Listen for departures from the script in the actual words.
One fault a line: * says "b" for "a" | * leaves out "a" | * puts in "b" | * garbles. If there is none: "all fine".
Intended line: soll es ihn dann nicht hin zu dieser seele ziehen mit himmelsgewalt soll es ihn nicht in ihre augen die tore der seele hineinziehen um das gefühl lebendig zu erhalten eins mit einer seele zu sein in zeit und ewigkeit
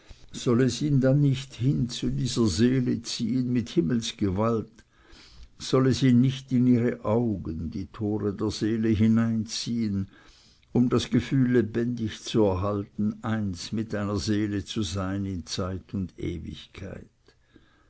all fine